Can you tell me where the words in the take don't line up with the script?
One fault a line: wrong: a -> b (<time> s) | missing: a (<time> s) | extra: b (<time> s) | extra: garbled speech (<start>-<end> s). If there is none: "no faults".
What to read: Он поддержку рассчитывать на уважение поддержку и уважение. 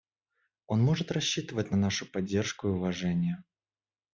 wrong: поддержку -> может (0.8 s)
wrong: уважение -> нашу (1.7 s)